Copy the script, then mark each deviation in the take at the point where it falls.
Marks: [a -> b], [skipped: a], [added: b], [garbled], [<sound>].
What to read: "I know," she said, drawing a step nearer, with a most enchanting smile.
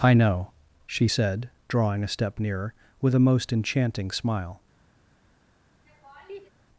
"I know," she said, drawing a step nearer, with a most enchanting smile. [laugh]